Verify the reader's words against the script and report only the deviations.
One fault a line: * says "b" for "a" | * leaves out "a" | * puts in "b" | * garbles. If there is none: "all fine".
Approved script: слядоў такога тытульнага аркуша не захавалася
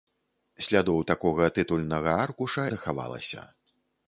* leaves out "не"